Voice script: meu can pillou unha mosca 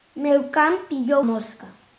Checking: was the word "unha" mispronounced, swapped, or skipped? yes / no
yes